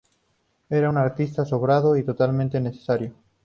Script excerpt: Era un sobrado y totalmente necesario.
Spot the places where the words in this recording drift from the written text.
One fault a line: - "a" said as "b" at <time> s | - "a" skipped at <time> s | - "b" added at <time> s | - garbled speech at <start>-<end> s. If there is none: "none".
- "artista" added at 1.0 s